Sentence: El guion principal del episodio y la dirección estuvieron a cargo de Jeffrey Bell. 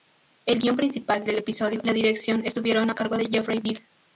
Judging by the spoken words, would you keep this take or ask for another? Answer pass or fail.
pass